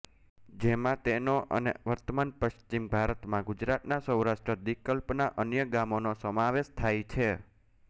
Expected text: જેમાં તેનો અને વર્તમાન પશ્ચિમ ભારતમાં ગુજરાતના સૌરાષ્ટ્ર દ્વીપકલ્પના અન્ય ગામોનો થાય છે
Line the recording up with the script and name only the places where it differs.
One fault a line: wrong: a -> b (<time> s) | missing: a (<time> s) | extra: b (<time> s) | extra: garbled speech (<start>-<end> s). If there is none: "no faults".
extra: સમાવેશ (6.2 s)